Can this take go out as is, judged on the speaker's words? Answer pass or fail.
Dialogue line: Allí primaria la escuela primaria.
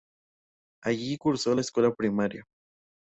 fail